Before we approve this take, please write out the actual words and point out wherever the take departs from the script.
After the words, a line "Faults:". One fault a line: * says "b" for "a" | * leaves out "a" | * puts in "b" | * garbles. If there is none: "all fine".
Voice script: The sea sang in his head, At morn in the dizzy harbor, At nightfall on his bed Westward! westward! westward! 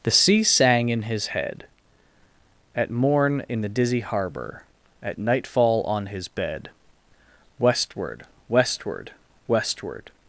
The sea sang in his head, At morn in the dizzy harbor, At nightfall on his bed Westward! westward! westward!
Faults:
all fine